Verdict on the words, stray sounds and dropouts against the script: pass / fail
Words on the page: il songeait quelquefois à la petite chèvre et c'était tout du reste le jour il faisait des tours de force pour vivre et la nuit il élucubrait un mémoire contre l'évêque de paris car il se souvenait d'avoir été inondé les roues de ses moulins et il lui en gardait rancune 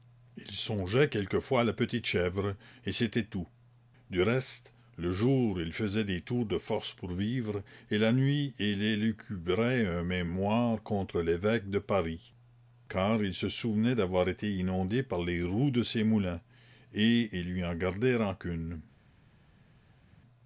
fail